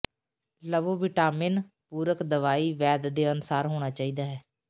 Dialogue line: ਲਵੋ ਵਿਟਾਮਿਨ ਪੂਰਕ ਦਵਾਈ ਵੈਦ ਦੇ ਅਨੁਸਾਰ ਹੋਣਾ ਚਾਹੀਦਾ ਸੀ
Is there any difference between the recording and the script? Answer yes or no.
yes